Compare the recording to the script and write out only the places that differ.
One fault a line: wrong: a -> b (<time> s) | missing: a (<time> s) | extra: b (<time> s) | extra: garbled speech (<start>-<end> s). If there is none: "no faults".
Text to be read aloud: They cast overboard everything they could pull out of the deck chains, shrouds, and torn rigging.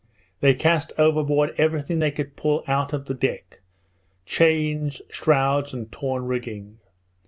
no faults